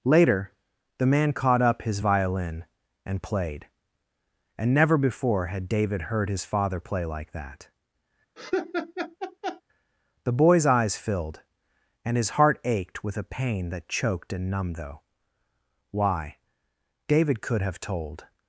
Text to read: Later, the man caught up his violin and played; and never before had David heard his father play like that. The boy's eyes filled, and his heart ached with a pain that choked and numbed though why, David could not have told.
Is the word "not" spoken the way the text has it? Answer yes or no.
no